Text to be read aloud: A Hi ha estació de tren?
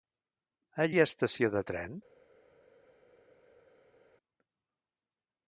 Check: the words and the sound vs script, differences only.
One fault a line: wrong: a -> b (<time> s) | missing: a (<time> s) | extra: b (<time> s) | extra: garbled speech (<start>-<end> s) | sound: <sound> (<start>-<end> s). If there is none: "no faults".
no faults